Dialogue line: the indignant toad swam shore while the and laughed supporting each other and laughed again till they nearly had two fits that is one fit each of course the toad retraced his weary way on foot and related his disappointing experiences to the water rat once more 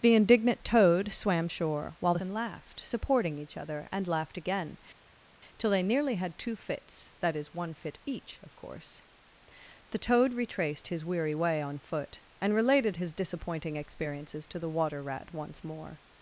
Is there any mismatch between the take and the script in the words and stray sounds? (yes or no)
no